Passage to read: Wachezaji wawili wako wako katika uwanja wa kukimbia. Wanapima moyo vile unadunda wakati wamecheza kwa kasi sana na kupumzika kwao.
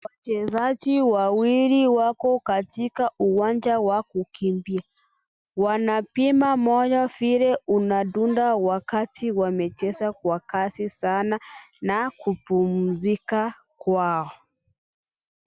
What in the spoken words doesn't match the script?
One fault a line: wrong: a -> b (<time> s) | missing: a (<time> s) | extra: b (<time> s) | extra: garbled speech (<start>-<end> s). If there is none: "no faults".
missing: wako (2.4 s)